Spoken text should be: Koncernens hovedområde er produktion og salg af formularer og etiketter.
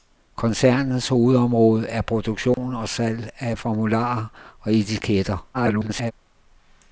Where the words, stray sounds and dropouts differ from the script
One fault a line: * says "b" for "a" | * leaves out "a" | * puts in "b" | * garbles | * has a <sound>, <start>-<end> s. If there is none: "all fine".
* has a dropout, 2.5-2.6 s
* garbles